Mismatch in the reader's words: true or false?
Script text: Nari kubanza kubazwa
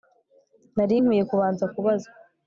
true